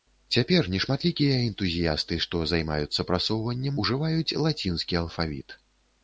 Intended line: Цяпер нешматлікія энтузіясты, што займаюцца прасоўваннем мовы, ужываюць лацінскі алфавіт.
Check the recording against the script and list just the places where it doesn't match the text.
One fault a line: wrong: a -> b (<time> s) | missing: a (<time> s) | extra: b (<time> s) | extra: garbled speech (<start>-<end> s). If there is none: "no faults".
missing: мовы (3.8 s)